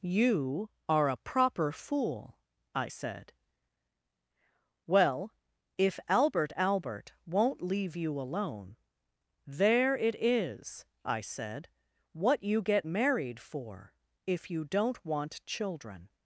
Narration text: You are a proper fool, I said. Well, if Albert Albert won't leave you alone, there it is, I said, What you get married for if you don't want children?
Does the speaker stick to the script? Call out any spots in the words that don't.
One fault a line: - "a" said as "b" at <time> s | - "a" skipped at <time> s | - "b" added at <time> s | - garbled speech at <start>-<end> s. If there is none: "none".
none